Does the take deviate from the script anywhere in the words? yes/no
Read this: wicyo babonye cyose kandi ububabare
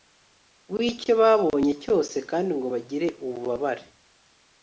yes